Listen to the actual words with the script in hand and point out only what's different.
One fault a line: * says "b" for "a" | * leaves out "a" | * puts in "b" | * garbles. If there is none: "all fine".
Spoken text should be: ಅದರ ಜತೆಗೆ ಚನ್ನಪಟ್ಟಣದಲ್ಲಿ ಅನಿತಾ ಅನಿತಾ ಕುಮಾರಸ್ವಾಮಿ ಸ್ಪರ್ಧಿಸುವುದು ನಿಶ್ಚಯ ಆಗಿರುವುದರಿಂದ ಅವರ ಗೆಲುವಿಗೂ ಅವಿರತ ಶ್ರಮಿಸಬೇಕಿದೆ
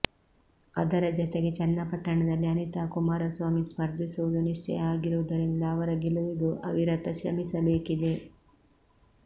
* leaves out "ಅನಿತಾ"